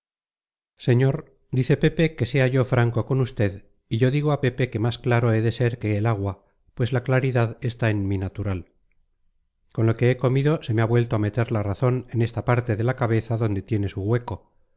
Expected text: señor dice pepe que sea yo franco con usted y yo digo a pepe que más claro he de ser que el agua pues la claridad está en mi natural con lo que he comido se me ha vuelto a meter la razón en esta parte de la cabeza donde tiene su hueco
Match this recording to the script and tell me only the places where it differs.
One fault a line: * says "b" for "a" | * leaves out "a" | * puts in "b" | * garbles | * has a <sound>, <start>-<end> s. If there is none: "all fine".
all fine